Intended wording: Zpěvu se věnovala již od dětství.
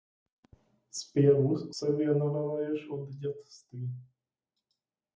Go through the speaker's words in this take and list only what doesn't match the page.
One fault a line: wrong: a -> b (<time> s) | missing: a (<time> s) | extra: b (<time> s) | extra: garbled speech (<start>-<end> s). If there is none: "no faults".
no faults